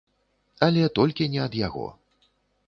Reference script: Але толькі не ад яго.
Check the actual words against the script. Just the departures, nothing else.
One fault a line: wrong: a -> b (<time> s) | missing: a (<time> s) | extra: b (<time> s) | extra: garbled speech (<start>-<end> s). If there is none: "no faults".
no faults